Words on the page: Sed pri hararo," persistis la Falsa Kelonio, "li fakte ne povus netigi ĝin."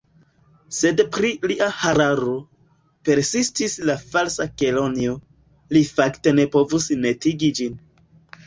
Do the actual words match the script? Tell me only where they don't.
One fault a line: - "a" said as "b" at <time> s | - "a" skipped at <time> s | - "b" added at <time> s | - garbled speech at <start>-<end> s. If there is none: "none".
- "lia" added at 1.5 s